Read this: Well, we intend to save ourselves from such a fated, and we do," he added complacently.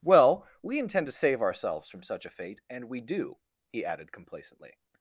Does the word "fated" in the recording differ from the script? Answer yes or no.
yes